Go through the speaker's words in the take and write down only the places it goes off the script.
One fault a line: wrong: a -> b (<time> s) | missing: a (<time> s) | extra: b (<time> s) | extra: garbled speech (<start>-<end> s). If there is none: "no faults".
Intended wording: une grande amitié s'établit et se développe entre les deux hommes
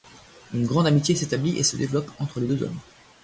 no faults